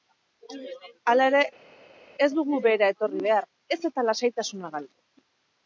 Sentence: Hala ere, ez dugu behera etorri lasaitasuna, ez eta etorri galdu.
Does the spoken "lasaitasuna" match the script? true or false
false